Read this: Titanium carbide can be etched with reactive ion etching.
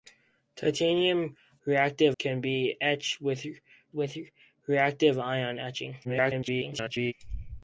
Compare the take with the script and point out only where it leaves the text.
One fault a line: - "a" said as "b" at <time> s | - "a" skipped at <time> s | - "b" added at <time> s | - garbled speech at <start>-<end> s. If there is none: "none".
- "carbide" said as "reactive" at 1.7 s
- "with" added at 3.9 s
- garbled speech at 6.0-7.1 s